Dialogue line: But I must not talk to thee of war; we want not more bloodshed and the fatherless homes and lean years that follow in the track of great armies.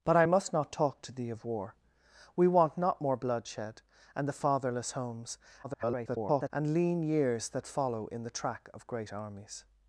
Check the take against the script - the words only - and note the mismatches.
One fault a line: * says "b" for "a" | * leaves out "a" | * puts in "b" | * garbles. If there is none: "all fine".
* garbles